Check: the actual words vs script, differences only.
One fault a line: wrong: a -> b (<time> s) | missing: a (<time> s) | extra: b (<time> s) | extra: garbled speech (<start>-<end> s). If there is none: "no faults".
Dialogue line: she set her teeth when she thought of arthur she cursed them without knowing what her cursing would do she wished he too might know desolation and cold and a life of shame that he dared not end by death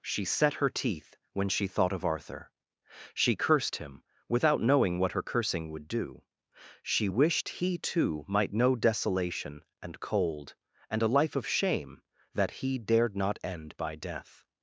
wrong: them -> him (3.8 s)